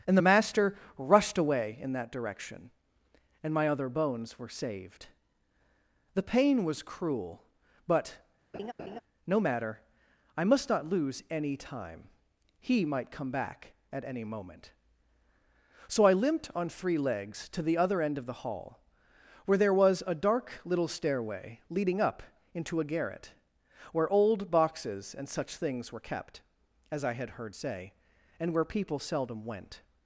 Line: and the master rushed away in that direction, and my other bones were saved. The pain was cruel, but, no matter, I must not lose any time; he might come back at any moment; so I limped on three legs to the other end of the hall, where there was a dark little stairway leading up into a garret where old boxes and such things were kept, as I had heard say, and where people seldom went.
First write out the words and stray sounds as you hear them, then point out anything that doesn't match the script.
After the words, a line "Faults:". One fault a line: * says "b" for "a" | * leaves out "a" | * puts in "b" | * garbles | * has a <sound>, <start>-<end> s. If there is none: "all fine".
and the master rushed away in that direction, and my other bones were saved. The pain was cruel, but, no matter, I must not lose any time; he might come back at any moment; so I limped on three legs to the other end of the hall, where there was a dark little stairway leading up into a garret where old boxes and such things were kept, as I had heard say, and where people seldom went.
Faults:
* has a laugh, 8.5-9.0 s